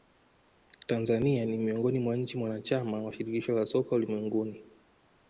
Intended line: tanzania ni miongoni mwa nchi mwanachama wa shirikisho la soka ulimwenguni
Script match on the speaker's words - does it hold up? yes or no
yes